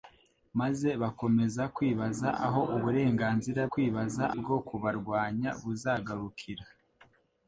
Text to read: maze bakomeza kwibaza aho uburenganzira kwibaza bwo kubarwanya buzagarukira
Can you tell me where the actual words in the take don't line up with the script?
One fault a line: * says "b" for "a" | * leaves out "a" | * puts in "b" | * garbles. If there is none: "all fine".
all fine